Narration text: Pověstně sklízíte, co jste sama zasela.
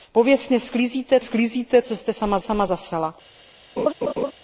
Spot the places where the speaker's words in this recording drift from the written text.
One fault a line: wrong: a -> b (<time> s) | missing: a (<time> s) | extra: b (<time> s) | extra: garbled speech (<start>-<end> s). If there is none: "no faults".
extra: sklízíte (1.2 s)
extra: sama (2.4 s)